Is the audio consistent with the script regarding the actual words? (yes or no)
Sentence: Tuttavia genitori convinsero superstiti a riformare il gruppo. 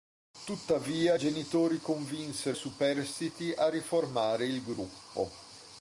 yes